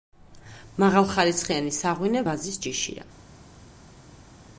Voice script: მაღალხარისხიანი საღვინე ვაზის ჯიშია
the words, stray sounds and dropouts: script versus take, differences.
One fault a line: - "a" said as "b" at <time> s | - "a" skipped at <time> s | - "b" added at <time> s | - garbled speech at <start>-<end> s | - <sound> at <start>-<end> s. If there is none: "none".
none